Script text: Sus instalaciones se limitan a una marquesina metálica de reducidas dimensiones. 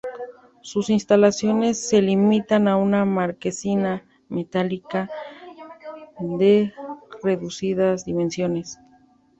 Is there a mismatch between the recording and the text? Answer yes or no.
no